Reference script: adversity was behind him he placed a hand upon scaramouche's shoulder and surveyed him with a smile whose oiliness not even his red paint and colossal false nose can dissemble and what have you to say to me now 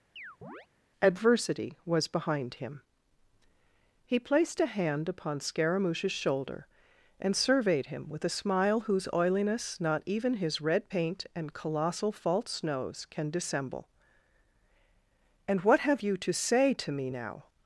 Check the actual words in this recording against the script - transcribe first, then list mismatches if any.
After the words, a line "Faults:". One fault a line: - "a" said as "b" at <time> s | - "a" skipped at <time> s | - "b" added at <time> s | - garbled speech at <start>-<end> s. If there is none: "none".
adversity was behind him he placed a hand upon scaramouche's shoulder and surveyed him with a smile whose oiliness not even his red paint and colossal false nose can dissemble and what have you to say to me now
Faults:
none